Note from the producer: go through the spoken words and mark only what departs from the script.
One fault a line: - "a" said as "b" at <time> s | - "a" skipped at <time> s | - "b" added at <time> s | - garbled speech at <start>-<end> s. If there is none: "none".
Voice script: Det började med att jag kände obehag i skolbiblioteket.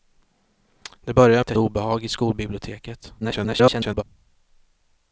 - "med" skipped at 1.4 s
- "kände" skipped at 1.6 s
- garbled speech at 3.2-4.0 s